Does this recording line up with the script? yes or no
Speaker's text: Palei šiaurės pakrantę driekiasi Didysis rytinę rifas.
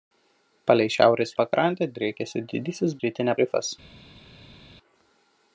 yes